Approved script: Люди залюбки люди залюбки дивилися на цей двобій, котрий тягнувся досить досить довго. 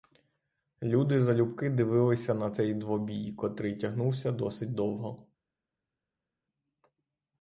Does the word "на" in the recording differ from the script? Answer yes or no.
no